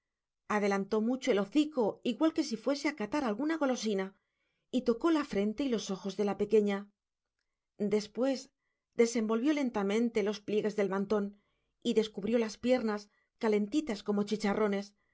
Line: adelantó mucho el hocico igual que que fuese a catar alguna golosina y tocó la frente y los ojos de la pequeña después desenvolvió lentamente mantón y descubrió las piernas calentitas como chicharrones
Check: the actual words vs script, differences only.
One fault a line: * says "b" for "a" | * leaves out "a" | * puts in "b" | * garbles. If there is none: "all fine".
* says "si" for "que"
* puts in "los pliegues del"